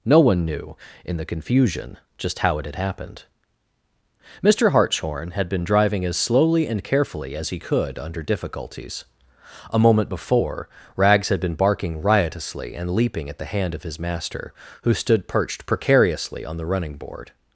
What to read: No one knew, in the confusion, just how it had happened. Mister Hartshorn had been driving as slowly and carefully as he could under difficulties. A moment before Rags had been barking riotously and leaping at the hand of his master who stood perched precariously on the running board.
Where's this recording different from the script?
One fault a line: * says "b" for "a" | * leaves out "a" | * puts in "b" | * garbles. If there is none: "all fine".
all fine